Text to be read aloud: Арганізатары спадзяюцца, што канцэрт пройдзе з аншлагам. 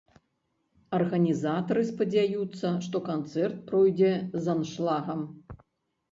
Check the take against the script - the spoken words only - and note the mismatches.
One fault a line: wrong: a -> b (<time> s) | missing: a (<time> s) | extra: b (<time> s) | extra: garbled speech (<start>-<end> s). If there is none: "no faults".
no faults